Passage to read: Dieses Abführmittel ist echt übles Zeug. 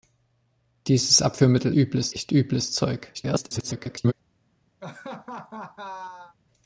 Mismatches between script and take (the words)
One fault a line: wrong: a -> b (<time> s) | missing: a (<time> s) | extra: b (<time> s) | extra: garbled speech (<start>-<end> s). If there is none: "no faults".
wrong: ist -> übles (1.7 s)
extra: garbled speech (3.1-4.1 s)